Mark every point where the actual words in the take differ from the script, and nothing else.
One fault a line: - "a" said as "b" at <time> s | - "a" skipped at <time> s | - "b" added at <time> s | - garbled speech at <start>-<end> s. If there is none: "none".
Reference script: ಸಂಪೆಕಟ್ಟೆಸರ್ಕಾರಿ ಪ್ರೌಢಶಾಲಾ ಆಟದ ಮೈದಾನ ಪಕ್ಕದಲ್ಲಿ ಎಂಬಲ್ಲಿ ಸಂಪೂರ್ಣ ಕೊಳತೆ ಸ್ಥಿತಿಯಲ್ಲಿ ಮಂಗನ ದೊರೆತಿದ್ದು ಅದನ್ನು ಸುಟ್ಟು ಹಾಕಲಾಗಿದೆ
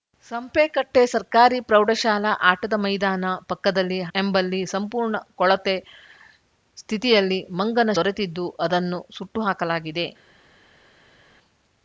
none